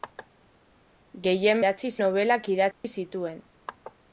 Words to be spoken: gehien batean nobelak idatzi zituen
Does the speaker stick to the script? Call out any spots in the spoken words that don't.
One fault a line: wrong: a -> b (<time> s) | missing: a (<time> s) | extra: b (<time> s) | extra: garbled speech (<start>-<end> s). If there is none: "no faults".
wrong: batean -> idatzi (1.6 s)